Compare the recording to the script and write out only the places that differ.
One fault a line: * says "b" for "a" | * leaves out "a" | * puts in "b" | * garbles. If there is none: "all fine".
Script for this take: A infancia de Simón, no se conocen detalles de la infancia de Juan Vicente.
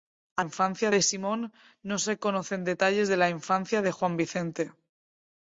all fine